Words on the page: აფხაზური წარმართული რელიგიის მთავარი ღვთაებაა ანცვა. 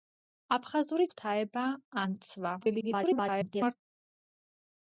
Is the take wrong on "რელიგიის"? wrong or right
wrong